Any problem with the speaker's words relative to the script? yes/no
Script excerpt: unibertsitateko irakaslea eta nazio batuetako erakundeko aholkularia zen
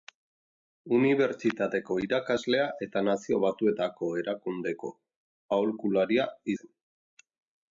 no